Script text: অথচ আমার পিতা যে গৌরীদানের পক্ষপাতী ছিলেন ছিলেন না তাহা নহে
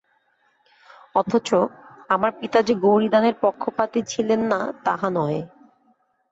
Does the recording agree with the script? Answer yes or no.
no